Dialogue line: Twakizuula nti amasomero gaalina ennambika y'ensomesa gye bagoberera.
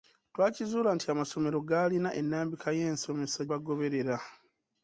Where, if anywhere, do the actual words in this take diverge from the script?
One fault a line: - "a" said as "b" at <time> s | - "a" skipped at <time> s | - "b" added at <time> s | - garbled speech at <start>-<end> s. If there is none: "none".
- "gye" skipped at 3.4 s